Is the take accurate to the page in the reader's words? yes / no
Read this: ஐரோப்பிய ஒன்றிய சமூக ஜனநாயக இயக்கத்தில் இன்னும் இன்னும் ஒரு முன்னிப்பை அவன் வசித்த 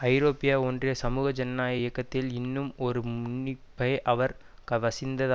no